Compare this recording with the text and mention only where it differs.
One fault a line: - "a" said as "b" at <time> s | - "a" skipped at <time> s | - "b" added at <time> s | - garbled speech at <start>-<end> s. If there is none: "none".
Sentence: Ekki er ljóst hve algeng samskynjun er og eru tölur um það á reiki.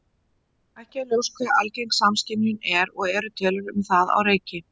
none